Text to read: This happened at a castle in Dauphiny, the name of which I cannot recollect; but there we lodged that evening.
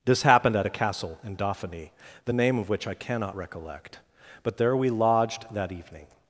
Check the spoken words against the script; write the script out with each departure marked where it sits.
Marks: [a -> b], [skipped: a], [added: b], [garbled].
This happened at a castle in Dauphiny, the name of which I cannot recollect; but there we lodged that evening.